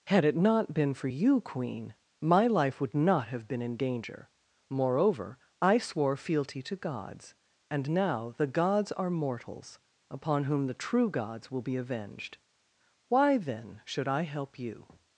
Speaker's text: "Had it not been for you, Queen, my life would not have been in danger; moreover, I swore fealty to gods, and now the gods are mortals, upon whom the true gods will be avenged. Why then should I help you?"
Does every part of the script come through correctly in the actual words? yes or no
yes